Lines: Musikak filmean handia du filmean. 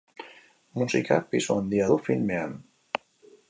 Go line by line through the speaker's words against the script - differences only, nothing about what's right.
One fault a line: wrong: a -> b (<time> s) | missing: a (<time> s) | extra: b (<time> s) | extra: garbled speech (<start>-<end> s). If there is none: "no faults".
wrong: filmean -> pisu (1.3 s)